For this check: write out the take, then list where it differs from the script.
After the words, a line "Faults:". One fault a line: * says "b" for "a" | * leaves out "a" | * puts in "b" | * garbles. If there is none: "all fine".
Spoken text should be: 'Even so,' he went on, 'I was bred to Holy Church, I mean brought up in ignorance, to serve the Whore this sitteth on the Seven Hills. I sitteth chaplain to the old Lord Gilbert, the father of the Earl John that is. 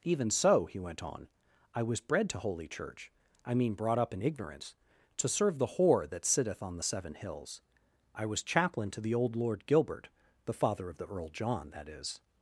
'Even so,' he went on, 'I was bred to Holy Church, I mean brought up in ignorance, to serve the Whore that sitteth on the Seven Hills. I was chaplain to the old Lord Gilbert, the father of the Earl John that is.
Faults:
* says "that" for "this"
* says "was" for "sitteth"